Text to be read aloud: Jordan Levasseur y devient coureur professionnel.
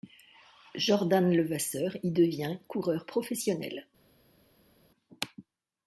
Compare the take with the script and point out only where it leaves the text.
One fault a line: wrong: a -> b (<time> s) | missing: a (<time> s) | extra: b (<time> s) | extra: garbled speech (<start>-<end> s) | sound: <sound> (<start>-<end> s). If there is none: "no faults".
no faults